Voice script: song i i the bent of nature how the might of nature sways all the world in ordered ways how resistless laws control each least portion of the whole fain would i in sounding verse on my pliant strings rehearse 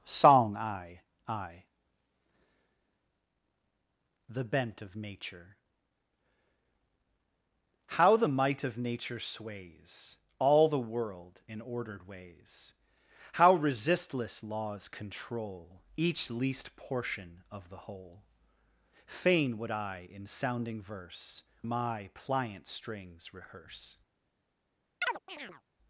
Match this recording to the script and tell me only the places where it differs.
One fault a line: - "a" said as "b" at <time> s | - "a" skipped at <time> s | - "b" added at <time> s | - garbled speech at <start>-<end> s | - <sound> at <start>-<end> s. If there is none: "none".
- "on" skipped at 21.4 s
- chirp at 25.0-25.6 s